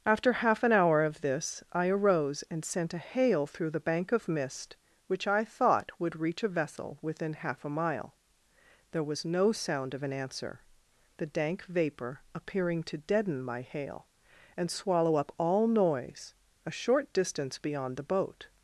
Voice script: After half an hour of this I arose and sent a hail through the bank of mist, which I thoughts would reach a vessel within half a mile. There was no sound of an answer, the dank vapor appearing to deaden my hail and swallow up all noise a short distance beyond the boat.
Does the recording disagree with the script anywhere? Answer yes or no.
yes